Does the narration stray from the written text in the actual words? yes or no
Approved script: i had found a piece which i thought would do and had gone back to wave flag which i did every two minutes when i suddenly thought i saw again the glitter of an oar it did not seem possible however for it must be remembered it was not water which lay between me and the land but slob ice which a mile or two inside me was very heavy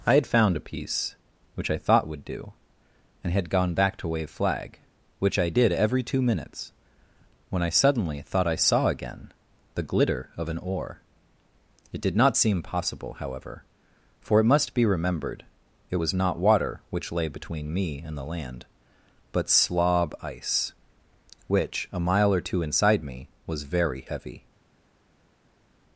no